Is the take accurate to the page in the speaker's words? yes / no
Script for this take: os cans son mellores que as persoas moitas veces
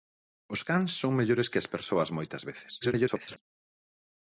no